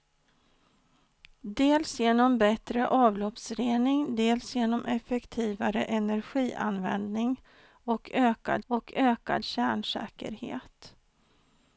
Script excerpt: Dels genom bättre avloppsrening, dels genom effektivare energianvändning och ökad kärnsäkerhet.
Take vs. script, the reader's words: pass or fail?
fail